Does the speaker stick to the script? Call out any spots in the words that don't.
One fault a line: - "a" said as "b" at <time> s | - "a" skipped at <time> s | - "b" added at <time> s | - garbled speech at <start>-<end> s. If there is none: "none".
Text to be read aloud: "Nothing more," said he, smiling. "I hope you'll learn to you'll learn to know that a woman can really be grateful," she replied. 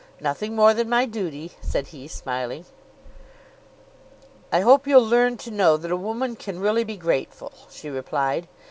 - "than my duty" added at 0.7 s
- "you'll learn to" skipped at 5.5 s